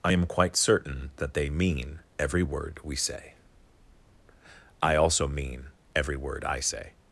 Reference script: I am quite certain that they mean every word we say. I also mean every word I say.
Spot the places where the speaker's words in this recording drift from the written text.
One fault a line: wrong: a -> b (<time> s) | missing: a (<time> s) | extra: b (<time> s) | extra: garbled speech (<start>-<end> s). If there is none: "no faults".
no faults